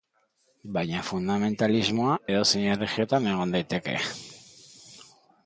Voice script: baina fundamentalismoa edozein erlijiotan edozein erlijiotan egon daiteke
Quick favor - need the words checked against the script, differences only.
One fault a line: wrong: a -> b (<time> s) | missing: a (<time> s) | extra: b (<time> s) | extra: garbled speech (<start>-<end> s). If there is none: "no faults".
missing: edozein erlijiotan (3.3 s)